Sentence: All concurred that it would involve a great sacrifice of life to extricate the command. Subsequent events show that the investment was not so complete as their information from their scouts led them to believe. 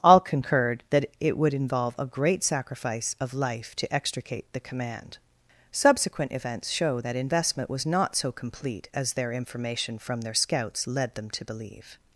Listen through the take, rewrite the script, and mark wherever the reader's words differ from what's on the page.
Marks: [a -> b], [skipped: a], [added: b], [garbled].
All concurred that it would involve a great sacrifice of life to extricate the command. Subsequent events show that [skipped: the] investment was not so complete as their information from their scouts led them to believe.